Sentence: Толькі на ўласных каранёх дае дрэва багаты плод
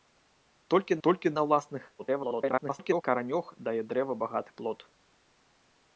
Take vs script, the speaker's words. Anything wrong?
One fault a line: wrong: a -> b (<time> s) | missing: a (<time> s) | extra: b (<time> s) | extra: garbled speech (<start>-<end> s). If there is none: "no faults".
extra: толькі (1.1 s)
extra: garbled speech (2.0-3.0 s)